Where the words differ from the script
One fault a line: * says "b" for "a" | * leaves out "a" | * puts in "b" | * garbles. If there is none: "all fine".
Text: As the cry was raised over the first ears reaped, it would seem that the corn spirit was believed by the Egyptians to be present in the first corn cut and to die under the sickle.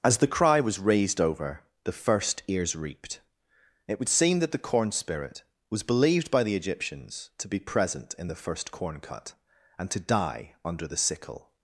all fine